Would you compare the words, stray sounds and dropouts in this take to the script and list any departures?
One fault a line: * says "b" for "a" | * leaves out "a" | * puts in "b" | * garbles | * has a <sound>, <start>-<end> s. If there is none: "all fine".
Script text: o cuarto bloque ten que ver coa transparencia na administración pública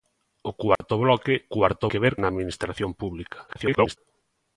* has a dropout, 0.8-0.8 s
* says "cuarto" for "ten"
* leaves out "coa transparencia"
* garbles